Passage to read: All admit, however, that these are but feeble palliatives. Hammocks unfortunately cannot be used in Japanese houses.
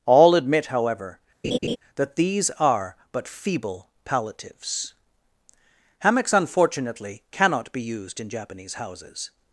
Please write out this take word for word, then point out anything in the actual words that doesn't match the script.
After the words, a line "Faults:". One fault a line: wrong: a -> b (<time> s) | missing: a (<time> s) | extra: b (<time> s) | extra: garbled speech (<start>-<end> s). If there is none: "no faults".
All admit, however, that these are but feeble palliatives. Hammocks unfortunately cannot be used in Japanese houses.
Faults:
no faults